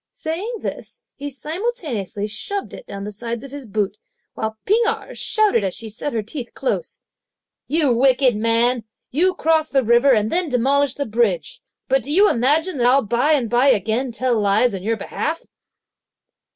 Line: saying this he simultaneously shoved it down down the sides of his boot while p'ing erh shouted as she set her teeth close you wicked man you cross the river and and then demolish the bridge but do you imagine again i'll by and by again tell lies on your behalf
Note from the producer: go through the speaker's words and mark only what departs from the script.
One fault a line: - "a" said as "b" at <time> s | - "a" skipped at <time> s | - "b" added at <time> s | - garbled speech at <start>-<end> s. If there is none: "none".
- "down" skipped at 3.0 s
- "and" skipped at 10.3 s
- "again" said as "that" at 12.8 s